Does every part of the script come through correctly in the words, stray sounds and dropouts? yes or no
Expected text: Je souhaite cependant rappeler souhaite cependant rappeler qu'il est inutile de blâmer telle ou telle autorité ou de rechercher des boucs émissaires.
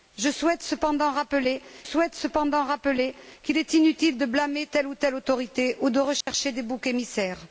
no